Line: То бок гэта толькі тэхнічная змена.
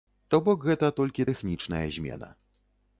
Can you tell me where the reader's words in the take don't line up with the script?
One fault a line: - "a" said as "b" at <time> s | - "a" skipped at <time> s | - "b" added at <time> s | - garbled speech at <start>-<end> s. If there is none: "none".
none